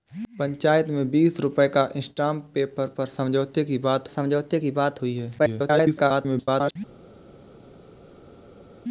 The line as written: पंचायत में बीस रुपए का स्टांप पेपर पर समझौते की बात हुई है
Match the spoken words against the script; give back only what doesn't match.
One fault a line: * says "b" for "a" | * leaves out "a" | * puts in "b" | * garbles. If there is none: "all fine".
* puts in "समझौते की बात"
* garbles